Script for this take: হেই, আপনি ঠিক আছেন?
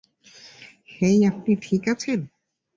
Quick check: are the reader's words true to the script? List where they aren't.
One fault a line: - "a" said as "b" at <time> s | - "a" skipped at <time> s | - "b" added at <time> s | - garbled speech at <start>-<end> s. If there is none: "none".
none